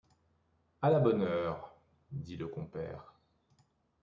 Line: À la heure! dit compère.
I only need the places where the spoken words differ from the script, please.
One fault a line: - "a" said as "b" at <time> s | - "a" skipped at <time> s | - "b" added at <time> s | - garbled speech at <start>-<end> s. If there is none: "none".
- "bonne" added at 1.0 s
- "le" added at 2.4 s